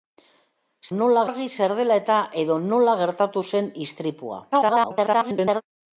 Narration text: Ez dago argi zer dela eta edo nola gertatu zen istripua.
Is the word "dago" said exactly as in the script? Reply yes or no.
no